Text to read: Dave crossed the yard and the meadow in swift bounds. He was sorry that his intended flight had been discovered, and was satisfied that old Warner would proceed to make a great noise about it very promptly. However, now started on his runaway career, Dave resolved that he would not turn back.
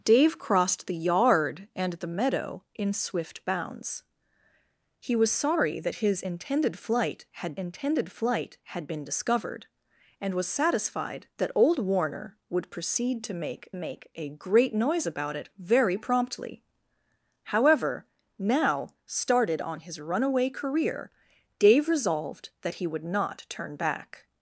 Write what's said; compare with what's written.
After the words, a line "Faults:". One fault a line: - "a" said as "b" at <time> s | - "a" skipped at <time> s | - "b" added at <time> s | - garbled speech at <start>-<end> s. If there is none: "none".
Dave crossed the yard and the meadow in swift bounds. He was sorry that his intended flight had intended flight had been discovered, and was satisfied that old Warner would proceed to make make a great noise about it very promptly. However, now started on his runaway career, Dave resolved that he would not turn back.
Faults:
- "intended flight had" added at 7.5 s
- "make" added at 13.7 s